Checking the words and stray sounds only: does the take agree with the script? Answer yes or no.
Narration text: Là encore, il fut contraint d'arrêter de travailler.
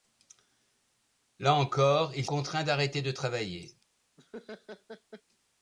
no